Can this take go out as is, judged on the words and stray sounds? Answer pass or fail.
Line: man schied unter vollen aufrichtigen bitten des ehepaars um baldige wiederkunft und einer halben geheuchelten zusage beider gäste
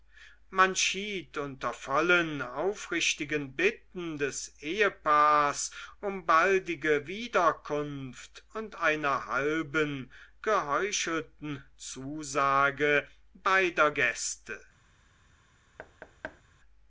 fail